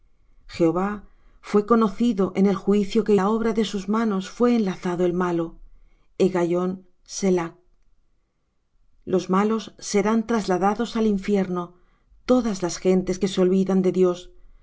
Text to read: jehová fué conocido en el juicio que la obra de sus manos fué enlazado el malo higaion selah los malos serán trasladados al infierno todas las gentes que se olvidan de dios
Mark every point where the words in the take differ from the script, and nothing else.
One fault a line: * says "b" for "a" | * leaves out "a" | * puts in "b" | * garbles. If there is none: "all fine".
all fine